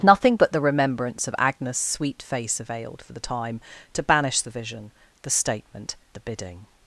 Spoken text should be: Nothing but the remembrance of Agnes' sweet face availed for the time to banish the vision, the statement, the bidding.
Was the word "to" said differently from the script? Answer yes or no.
no